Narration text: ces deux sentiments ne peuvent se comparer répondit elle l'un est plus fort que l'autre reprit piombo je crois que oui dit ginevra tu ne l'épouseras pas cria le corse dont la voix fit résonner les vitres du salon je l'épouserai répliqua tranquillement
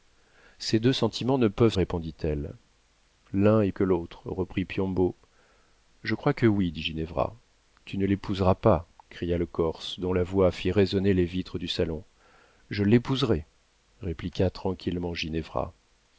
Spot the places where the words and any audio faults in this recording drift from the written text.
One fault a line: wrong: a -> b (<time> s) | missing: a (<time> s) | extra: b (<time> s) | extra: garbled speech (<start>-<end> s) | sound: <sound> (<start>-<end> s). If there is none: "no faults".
missing: se comparer (1.8 s)
missing: plus fort (3.7 s)